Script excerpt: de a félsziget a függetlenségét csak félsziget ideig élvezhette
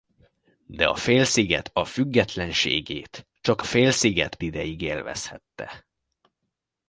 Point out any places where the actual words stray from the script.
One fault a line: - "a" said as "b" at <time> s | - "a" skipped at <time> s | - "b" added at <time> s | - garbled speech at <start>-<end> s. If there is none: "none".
none